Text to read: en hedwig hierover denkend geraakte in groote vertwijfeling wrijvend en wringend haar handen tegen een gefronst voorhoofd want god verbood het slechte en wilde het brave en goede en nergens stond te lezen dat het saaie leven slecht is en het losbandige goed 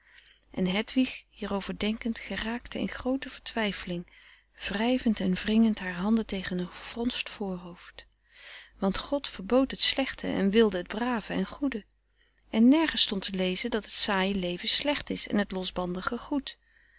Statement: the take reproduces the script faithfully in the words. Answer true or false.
true